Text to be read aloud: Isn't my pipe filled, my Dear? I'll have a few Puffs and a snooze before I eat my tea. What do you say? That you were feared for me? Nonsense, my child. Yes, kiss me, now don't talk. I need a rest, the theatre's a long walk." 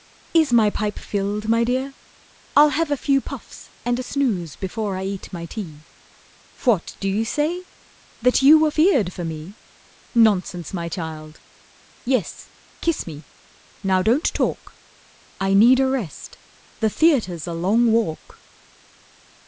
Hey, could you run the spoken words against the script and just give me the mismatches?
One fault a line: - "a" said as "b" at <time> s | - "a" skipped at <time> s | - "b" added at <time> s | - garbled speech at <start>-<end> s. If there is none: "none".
- "Isn't" said as "Is" at 0.3 s